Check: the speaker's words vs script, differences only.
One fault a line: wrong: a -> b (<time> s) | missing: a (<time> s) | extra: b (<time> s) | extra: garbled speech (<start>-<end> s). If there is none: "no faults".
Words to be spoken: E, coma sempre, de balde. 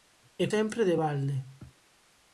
missing: coma (0.5 s)